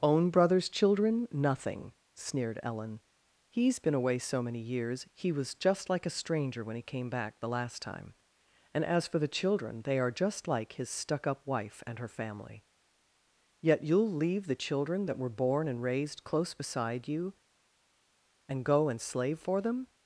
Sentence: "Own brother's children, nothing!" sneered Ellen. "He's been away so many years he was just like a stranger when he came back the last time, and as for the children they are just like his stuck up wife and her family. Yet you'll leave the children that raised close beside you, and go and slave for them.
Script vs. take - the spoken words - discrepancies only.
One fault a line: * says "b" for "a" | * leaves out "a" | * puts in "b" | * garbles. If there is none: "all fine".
* puts in "were born and"